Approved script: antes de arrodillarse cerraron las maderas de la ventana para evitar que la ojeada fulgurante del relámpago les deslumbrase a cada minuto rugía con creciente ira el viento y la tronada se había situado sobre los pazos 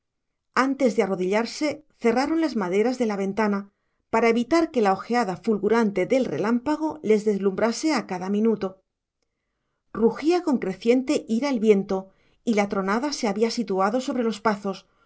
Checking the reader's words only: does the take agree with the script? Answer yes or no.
yes